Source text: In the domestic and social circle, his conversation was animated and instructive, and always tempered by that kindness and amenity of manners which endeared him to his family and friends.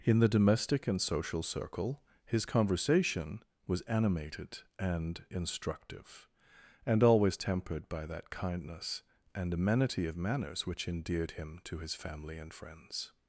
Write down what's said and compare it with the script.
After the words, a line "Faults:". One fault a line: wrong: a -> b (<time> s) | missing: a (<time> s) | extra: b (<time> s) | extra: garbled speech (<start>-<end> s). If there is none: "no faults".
In the domestic and social circle, his conversation was animated and instructive, and always tempered by that kindness and amenity of manners which endeared him to his family and friends.
Faults:
no faults